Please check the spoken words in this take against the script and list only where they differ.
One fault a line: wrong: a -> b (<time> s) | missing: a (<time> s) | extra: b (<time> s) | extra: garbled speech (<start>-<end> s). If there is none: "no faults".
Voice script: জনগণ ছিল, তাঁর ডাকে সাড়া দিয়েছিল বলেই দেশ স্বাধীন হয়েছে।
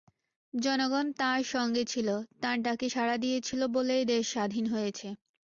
extra: তাঁর সঙ্গে (1.2 s)